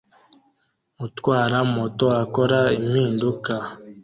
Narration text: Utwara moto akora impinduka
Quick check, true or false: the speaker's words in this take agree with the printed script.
true